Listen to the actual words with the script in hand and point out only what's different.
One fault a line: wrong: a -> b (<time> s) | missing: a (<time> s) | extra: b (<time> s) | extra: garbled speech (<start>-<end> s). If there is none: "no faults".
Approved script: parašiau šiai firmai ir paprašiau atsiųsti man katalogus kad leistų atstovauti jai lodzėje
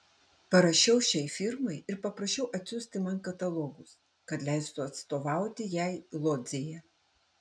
no faults